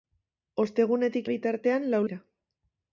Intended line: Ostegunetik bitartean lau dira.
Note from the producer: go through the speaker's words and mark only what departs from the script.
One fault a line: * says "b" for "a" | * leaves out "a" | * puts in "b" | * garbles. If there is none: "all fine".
all fine